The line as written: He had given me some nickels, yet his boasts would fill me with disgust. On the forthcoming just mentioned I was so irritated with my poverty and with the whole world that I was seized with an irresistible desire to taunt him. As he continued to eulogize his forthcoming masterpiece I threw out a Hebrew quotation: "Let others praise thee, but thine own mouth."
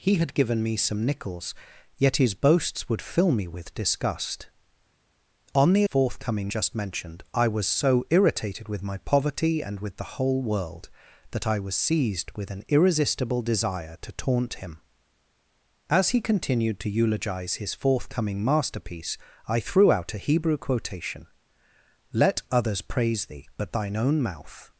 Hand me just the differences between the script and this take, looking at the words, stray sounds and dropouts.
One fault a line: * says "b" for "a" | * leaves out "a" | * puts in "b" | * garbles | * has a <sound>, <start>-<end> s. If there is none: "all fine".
all fine